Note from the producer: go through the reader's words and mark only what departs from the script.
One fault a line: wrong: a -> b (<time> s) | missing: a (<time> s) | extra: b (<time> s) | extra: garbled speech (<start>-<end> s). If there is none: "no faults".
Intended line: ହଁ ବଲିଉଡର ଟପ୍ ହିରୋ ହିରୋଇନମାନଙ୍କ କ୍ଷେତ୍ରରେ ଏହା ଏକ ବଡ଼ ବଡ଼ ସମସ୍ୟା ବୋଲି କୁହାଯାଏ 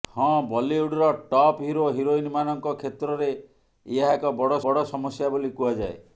no faults